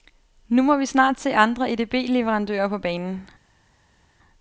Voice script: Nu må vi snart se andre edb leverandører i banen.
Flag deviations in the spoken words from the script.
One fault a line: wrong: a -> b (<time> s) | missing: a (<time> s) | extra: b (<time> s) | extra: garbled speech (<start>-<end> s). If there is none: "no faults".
wrong: i -> på (2.7 s)